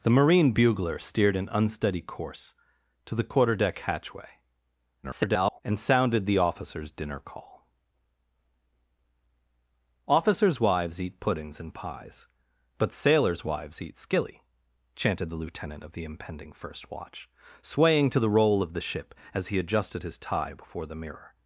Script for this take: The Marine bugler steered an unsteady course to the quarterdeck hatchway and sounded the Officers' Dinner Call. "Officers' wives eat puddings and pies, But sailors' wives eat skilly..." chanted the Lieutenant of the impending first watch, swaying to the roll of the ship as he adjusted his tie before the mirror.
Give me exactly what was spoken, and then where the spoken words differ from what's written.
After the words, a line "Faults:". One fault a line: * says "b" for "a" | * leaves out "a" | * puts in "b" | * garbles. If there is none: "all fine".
The Marine bugler steered an unsteady course to the quarterdeck hatchway [garbled] and sounded the Officers' Dinner Call. "Officers' wives eat puddings and pies, But sailors' wives eat skilly..." chanted the Lieutenant of the impending first watch, swaying to the roll of the ship as he adjusted his tie before the mirror.
Faults:
* garbles